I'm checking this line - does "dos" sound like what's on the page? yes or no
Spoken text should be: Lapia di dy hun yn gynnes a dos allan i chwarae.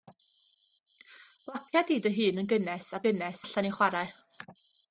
no